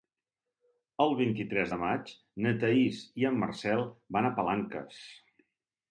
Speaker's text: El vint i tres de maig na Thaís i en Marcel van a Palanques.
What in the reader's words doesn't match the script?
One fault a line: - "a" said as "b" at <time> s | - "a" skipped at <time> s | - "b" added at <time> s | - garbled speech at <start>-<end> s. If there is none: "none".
none